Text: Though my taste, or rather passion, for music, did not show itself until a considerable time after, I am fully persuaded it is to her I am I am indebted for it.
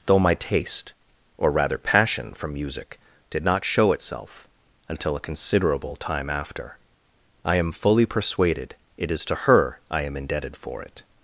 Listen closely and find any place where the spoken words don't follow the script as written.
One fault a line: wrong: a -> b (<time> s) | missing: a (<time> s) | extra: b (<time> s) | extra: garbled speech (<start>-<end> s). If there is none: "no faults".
missing: I am (10.2 s)